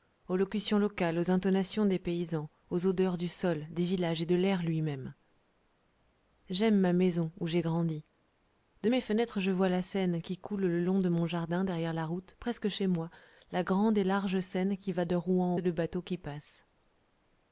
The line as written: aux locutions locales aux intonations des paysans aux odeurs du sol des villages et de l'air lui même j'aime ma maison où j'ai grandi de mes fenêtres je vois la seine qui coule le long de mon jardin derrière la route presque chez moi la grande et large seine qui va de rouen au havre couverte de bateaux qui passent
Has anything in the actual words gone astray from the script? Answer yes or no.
yes